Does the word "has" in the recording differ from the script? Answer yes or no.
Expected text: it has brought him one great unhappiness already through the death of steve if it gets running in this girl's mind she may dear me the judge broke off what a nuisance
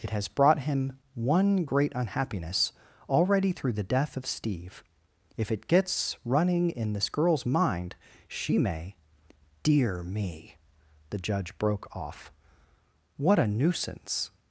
no